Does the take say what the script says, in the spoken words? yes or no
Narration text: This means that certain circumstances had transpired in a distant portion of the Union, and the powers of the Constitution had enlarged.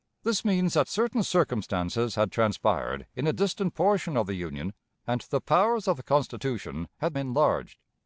yes